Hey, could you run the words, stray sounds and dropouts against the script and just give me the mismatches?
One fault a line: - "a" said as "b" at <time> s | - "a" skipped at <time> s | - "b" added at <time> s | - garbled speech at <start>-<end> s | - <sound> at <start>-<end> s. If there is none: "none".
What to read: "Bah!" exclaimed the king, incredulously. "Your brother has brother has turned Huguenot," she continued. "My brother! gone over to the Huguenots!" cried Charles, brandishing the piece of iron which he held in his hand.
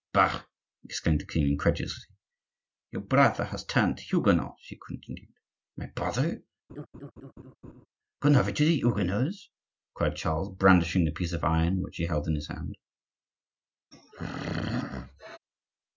- "brother has" skipped at 3.6 s
- laugh at 6.7-7.9 s
- throat clearing at 13.9-15.4 s